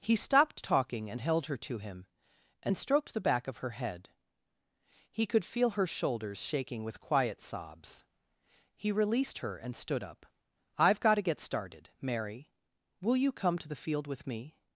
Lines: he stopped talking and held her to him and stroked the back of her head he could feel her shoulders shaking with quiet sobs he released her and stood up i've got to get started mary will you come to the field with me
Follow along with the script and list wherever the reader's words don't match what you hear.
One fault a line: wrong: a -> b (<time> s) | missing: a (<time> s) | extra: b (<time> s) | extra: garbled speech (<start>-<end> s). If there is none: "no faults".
no faults